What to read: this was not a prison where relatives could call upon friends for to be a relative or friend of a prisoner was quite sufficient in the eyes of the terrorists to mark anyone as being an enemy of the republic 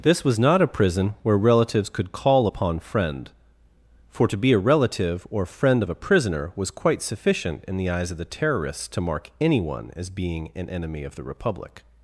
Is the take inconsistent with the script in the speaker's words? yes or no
yes